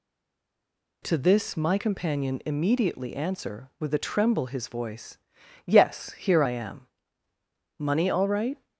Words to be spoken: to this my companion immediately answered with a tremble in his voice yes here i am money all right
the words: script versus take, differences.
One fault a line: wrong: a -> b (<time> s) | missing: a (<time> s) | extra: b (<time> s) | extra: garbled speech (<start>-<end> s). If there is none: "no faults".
wrong: answered -> answer (3.1 s)
missing: in (4.5 s)